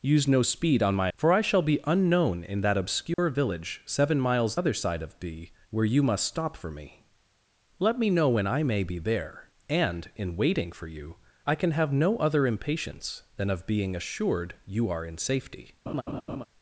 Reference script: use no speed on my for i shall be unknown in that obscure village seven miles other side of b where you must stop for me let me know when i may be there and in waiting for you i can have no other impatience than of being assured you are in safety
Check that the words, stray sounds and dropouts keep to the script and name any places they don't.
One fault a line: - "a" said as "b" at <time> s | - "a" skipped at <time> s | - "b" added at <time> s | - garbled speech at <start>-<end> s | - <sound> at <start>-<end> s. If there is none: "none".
- dropout at 3.1-3.2 s
- laugh at 15.9-16.4 s